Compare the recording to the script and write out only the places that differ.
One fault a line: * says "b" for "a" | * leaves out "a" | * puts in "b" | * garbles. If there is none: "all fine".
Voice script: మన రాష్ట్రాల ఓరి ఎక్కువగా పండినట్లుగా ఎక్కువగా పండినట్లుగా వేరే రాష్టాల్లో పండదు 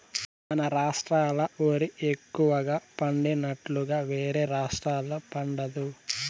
* leaves out "ఎక్కువగా పండినట్లుగా"